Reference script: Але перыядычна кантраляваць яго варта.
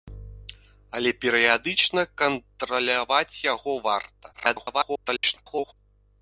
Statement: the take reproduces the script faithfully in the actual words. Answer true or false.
false